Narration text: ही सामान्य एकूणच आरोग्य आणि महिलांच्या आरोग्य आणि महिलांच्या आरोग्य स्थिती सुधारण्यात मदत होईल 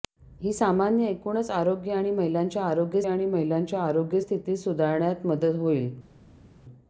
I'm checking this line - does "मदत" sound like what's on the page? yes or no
yes